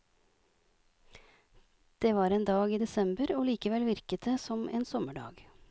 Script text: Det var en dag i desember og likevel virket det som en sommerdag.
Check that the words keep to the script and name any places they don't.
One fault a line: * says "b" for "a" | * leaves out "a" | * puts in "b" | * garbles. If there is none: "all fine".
all fine